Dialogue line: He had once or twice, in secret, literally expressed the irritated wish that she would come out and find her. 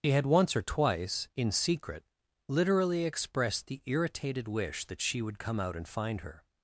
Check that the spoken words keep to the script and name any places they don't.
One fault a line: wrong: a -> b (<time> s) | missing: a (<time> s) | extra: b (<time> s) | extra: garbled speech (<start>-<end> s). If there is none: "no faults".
no faults